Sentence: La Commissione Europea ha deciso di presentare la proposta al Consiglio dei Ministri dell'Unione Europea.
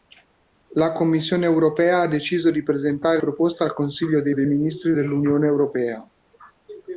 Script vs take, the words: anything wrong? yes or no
yes